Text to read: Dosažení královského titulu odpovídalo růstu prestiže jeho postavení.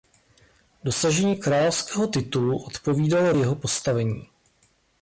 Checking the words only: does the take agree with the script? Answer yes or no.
no